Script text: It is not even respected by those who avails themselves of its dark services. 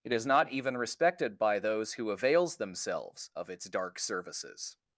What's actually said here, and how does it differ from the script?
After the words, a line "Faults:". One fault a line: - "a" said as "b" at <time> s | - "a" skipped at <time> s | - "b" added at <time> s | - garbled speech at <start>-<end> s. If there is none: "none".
It is not even respected by those who avails themselves of its dark services.
Faults:
none